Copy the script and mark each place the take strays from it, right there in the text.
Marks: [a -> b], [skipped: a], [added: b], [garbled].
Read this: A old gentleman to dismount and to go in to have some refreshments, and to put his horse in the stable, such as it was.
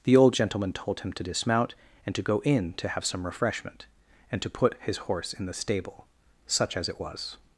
[A -> The] old gentleman [added: told him] to dismount and to go in to have some [refreshments, -> refreshment] and to put his horse in the stable, such as it was.